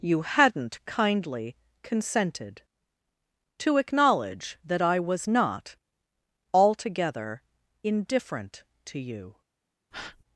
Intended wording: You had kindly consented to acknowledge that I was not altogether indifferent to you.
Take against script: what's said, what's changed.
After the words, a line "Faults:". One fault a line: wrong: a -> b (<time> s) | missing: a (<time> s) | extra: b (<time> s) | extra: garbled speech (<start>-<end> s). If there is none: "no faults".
You hadn't kindly consented to acknowledge that I was not altogether indifferent to you.
Faults:
wrong: had -> hadn't (0.2 s)